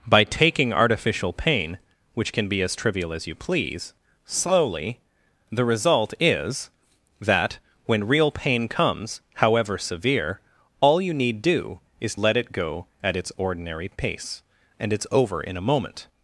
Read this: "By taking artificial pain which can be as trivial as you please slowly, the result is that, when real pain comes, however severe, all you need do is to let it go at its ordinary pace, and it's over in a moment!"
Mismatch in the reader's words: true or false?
true